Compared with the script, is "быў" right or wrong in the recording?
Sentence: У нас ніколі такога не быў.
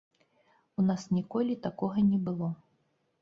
wrong